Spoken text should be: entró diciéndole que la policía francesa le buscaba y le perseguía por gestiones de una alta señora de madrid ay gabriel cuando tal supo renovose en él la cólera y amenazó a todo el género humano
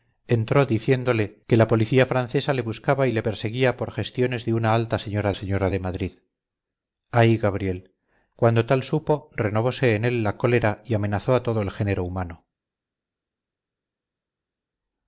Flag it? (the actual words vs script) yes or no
yes